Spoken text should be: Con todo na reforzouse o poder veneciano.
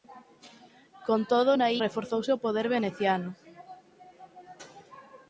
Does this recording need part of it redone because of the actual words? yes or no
no